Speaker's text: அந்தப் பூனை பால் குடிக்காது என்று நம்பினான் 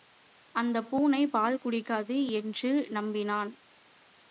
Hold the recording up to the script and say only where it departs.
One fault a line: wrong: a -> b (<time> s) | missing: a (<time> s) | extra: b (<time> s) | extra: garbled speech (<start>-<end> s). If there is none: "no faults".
no faults